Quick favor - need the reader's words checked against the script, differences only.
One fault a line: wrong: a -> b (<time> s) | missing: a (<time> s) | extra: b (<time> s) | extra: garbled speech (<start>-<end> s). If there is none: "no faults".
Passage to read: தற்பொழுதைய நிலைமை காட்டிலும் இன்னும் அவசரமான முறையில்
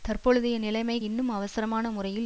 missing: காட்டிலும் (1.0 s)